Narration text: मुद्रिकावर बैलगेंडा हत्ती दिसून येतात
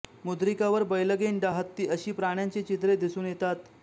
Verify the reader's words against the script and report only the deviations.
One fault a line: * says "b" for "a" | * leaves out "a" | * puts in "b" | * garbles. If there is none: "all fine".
* puts in "अशी प्राण्यांची चित्रे"